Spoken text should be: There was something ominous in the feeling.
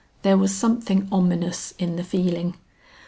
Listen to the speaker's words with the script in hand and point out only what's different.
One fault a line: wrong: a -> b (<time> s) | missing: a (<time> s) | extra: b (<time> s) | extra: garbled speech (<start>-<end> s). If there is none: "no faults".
no faults